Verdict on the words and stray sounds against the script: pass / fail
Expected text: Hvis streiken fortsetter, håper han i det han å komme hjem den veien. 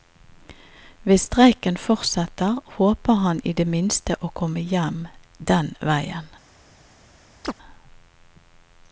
fail